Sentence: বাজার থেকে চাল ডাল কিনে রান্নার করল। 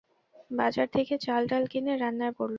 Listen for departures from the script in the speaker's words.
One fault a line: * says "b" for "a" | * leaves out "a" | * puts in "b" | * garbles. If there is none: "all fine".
all fine